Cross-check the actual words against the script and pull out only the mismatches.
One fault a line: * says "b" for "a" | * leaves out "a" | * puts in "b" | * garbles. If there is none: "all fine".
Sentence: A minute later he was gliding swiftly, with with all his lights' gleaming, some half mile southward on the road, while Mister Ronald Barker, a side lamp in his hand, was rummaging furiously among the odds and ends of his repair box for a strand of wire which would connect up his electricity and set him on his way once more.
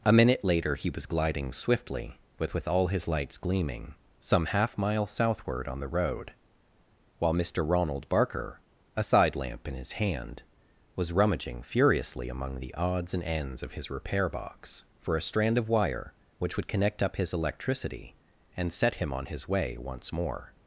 all fine